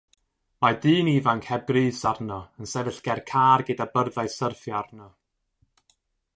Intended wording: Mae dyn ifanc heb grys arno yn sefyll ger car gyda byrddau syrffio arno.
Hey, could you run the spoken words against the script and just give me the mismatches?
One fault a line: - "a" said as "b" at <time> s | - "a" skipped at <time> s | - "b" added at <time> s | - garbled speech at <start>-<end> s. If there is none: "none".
none